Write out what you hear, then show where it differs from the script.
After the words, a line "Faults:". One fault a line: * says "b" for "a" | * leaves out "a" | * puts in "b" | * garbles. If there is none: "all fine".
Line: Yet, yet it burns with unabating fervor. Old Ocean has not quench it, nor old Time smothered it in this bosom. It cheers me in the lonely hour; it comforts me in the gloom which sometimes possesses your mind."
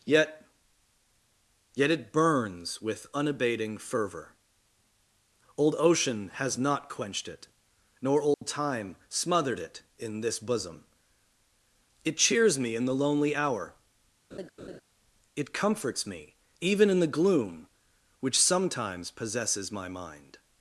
Yet, yet it burns with unabating fervor. Old Ocean has not quenched it, nor old Time smothered it in this bosom. It cheers me in the lonely hour; it comforts me even in the gloom which sometimes possesses my mind."
Faults:
* says "quenched" for "quench"
* puts in "even"
* says "my" for "your"